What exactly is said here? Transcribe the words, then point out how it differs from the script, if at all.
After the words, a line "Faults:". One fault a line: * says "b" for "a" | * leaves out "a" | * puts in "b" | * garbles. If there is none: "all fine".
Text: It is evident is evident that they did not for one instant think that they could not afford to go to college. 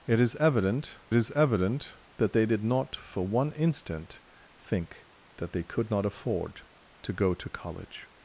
It is evident is evident that they did not for one instant think that they could not afford to go to college.
Faults:
all fine